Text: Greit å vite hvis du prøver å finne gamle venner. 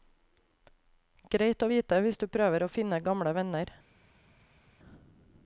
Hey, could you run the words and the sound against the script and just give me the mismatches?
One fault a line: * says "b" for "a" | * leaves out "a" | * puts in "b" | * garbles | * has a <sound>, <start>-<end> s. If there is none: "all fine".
all fine